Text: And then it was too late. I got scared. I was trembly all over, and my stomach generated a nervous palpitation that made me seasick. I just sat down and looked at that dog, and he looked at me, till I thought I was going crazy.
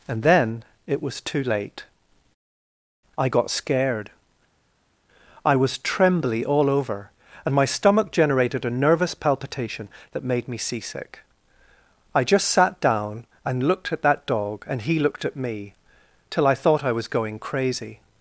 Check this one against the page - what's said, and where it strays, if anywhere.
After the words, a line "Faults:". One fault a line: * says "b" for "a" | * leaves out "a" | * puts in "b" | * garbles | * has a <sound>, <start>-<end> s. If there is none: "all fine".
And then it was too late. I got scared. I was trembly all over, and my stomach generated a nervous palpitation that made me seasick. I just sat down and looked at that dog, and he looked at me, till I thought I was going crazy.
Faults:
all fine